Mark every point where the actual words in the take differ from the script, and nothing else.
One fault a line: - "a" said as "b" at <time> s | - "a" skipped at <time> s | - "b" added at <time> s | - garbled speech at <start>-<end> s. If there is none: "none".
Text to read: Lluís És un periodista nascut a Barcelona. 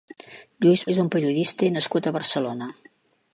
none